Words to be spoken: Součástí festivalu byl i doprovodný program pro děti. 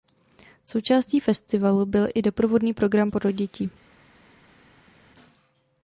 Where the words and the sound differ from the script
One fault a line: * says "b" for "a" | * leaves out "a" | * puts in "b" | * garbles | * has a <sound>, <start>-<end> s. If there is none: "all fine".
all fine